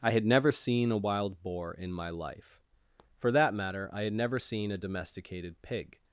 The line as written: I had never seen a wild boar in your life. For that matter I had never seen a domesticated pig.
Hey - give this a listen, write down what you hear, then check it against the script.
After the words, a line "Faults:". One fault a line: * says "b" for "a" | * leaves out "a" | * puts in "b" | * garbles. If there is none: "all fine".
I had never seen a wild boar in my life. For that matter I had never seen a domesticated pig.
Faults:
* says "my" for "your"